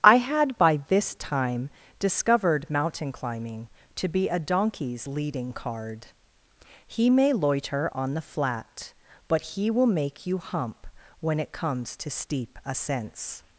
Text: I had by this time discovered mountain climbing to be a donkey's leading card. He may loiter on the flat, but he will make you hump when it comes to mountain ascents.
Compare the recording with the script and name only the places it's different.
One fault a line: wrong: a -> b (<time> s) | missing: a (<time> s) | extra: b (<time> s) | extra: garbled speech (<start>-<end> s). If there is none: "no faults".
wrong: mountain -> steep (12.1 s)